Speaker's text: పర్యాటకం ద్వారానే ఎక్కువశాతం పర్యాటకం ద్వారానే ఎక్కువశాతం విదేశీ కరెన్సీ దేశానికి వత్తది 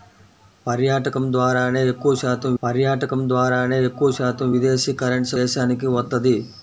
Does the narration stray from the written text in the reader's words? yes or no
no